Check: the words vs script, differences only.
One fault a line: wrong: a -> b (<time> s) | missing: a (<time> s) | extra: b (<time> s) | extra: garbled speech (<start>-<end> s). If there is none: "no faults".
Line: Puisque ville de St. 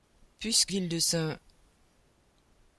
no faults